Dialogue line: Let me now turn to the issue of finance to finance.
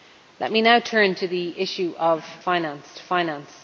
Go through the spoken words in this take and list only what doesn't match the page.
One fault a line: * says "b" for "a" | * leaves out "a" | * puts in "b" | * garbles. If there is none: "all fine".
all fine